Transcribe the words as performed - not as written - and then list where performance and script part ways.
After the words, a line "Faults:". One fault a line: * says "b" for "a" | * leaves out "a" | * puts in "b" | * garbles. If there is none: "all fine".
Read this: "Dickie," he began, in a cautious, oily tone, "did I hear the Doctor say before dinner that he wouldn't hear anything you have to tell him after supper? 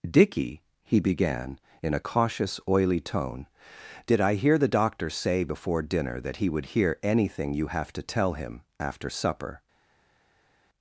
"Dickie," he began, in a cautious, oily tone, "did I hear the Doctor say before dinner that he would hear anything you have to tell him after supper?
Faults:
* says "would" for "wouldn't"